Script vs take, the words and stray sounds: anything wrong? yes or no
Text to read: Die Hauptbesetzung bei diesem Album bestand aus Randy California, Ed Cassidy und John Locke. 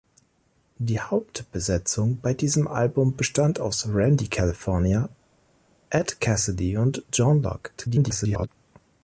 yes